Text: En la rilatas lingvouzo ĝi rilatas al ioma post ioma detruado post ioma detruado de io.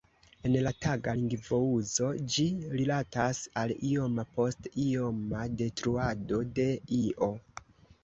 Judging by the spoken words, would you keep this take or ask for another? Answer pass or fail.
fail